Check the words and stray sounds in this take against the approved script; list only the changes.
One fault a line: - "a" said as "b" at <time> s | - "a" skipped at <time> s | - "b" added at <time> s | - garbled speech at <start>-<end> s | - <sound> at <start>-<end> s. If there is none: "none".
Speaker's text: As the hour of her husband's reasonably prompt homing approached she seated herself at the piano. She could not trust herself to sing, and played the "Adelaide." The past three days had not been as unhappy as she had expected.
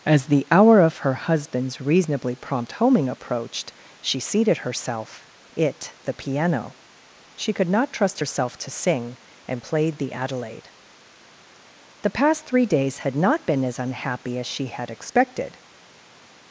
- "at" said as "it" at 5.5 s